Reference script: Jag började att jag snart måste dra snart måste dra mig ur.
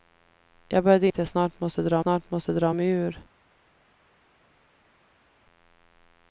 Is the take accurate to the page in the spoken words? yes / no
yes